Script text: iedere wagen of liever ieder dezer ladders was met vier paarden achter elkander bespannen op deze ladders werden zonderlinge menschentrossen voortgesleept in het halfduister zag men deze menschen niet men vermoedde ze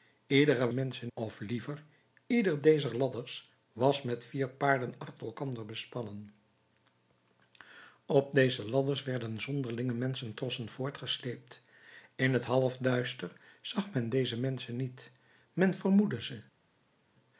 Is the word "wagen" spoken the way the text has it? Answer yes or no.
no